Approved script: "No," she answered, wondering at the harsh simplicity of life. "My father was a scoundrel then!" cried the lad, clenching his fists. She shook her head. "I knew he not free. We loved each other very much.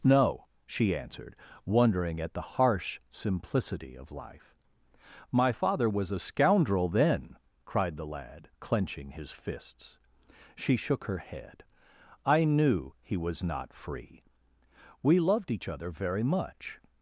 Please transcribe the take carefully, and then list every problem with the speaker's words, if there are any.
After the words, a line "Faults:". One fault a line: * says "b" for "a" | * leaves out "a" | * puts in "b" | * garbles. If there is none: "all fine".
"No," she answered, wondering at the harsh simplicity of life. "My father was a scoundrel then!" cried the lad, clenching his fists. She shook her head. "I knew he was not free. We loved each other very much.
Faults:
* puts in "was"